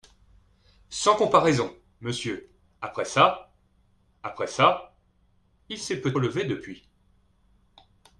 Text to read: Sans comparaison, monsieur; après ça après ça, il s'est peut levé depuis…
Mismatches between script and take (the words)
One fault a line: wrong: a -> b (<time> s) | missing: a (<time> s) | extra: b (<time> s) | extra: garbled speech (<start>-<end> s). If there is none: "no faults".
no faults